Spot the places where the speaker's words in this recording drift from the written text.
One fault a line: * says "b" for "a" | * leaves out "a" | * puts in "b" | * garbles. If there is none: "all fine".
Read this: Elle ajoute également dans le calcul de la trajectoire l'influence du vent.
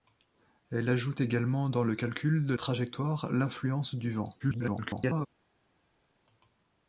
* leaves out "la"
* garbles